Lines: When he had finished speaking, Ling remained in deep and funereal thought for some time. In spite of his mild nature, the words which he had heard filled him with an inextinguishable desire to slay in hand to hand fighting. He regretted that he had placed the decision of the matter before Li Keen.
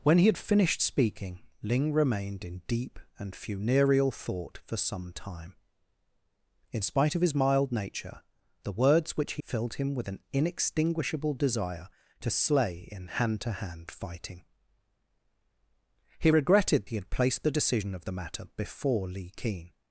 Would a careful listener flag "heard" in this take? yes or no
yes